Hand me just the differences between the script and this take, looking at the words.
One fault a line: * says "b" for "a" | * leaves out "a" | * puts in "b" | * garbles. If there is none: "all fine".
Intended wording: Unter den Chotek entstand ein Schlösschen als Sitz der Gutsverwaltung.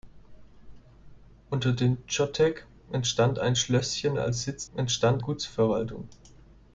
* says "entstand" for "der"